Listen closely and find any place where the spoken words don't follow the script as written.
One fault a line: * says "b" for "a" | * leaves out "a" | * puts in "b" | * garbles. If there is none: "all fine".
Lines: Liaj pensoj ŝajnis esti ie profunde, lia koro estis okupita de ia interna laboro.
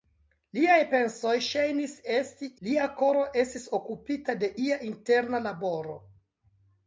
* leaves out "ie profunde"